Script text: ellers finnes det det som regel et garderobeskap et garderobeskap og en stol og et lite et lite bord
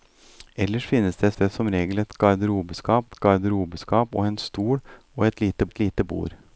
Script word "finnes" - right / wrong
right